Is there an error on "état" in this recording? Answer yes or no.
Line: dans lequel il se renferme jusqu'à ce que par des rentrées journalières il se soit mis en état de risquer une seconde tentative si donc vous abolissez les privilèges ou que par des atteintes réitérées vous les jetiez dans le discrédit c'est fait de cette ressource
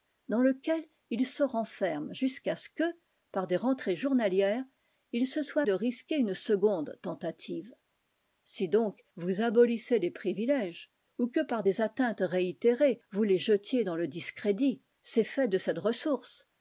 yes